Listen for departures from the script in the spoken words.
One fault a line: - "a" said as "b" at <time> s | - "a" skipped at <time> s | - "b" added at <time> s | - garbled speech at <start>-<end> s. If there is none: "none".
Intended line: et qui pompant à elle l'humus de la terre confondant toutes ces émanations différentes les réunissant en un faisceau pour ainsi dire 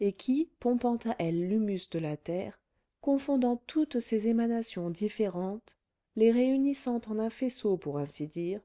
none